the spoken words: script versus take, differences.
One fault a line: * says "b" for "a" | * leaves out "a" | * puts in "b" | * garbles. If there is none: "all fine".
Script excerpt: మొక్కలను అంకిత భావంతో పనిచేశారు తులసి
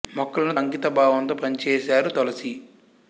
all fine